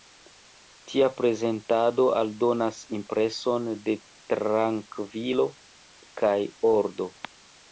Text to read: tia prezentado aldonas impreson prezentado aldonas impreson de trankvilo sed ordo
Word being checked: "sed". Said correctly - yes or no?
no